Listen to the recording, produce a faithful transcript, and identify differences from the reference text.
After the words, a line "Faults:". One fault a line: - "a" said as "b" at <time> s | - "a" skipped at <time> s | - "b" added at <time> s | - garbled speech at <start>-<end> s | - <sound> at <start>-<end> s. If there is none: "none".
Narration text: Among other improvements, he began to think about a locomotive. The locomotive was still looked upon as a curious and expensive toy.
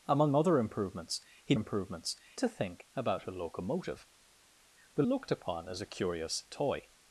Among other improvements, he improvements to think about a locomotive. The looked upon as a curious toy.
Faults:
- "began" said as "improvements" at 1.5 s
- "locomotive was still" skipped at 5.0 s
- "and expensive" skipped at 6.4 s